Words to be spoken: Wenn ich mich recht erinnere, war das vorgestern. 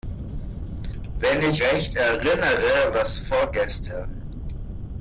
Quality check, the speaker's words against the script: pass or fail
fail